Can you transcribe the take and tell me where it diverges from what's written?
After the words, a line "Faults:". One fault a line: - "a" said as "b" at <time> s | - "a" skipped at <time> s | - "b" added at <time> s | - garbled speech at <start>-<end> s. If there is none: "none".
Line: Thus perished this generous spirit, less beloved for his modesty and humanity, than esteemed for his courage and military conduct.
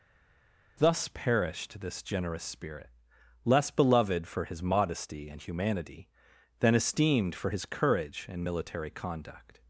Thus perished this generous spirit, less beloved for his modesty and humanity, than esteemed for his courage and military conduct.
Faults:
none